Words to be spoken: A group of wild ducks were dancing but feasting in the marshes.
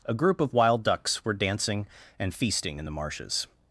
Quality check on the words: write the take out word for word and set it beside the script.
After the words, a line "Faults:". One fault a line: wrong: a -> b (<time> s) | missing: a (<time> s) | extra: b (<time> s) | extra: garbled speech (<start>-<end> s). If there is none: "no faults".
A group of wild ducks were dancing and feasting in the marshes.
Faults:
wrong: but -> and (2.2 s)